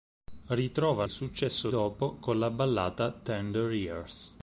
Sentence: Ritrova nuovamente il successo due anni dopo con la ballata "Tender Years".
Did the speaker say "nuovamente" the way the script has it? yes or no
no